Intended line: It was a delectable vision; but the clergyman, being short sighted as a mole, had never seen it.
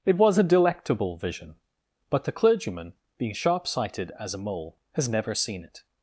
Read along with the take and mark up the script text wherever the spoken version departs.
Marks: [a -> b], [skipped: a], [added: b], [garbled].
It was a delectable vision; but the clergyman, being [short -> sharp] sighted as a mole, [had -> has] never seen it.